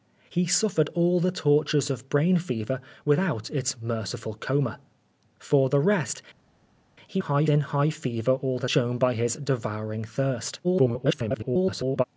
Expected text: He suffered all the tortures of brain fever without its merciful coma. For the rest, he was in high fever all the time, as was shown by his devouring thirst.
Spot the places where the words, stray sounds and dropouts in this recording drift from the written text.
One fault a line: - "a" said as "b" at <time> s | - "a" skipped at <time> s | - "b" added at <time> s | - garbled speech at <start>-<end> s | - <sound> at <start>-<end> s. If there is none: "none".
- "was" said as "high" at 7.2 s
- "time as was" skipped at 8.7 s
- garbled speech at 10.6-12.0 s